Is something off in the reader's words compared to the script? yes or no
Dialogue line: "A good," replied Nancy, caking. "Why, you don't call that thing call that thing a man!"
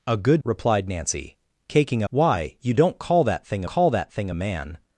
no